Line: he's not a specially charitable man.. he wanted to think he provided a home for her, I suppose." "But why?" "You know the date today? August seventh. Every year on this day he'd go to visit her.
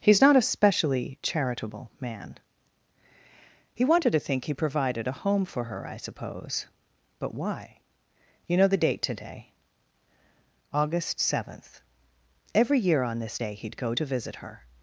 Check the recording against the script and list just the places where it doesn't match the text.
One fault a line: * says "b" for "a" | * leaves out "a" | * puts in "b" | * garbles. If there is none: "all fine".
all fine